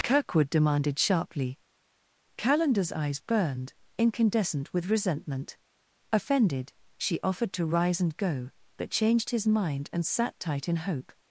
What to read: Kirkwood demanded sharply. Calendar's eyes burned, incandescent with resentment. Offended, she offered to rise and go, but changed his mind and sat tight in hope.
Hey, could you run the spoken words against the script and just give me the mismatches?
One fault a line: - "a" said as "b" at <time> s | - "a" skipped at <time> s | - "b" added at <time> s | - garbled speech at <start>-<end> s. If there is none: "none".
none